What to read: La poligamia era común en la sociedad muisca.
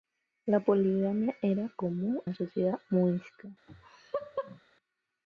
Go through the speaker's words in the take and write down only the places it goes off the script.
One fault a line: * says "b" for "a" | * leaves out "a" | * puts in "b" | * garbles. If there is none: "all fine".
* leaves out "en"